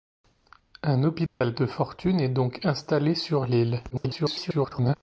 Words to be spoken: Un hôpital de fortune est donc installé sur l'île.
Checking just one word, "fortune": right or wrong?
right